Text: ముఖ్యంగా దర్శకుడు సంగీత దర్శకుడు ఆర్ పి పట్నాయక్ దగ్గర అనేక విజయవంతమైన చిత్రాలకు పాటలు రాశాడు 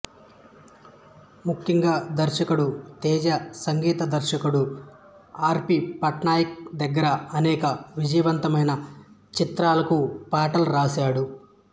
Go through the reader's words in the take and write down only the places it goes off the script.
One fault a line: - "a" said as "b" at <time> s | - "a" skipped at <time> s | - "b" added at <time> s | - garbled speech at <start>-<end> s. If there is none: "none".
- "తేజ" added at 3.0 s